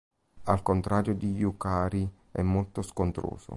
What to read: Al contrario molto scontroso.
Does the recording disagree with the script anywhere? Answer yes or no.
yes